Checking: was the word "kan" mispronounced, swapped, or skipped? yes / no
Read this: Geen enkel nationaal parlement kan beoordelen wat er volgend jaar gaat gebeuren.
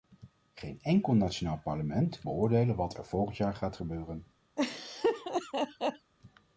yes